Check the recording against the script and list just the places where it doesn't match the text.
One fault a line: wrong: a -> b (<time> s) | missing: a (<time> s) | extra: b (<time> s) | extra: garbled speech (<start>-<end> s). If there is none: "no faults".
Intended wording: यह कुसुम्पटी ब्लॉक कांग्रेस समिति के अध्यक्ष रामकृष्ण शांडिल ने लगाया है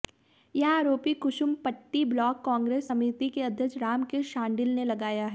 extra: आरोप (0.7 s)